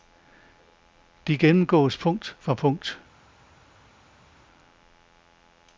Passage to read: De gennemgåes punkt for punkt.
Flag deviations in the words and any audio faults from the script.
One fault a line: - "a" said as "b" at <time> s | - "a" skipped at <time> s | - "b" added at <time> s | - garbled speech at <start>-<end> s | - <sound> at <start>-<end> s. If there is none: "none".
none